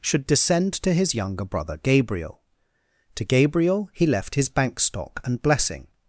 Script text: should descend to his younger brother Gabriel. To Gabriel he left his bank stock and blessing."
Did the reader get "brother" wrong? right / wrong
right